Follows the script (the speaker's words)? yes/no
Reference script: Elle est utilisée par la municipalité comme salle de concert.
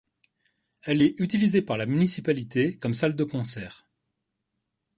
yes